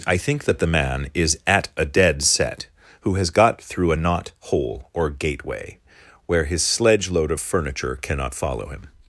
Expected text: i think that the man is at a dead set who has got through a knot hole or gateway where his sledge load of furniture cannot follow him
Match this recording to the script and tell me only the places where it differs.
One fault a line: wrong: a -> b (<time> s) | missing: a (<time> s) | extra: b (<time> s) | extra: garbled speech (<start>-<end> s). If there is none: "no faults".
no faults